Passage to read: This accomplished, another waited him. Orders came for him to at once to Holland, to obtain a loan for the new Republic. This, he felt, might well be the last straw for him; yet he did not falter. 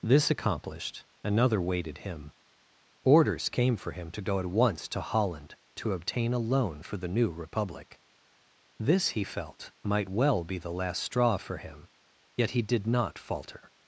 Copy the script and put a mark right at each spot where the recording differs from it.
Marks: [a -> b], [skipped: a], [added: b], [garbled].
This accomplished, another waited him. Orders came for him to [added: go] at once to Holland, to obtain a loan for the new Republic. This, he felt, might well be the last straw for him; yet he did not falter.